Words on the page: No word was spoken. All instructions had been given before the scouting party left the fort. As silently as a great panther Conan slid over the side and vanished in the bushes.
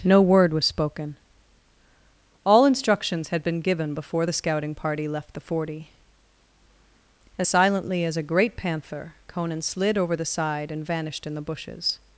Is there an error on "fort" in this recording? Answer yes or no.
yes